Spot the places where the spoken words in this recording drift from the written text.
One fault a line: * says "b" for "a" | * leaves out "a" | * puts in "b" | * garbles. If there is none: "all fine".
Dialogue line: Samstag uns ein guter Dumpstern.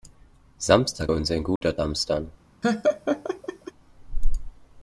all fine